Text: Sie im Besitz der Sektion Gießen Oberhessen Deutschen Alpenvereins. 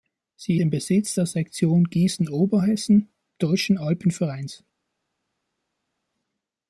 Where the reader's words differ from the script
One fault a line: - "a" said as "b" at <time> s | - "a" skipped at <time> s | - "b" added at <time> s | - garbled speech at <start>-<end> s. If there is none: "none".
none